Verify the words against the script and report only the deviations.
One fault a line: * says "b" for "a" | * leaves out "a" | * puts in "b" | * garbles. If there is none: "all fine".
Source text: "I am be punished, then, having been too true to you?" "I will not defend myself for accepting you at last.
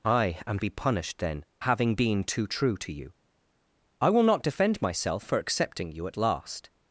all fine